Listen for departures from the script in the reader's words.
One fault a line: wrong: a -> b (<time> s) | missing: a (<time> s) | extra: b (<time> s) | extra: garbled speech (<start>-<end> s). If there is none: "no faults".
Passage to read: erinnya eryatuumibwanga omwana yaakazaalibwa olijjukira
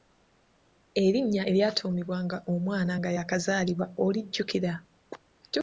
extra: nga (3.0 s)